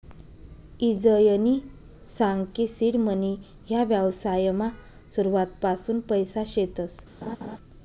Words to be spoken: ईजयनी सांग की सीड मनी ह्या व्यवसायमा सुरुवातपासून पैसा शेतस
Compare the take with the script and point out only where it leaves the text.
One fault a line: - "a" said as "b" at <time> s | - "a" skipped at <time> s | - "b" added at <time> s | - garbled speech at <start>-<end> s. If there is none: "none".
none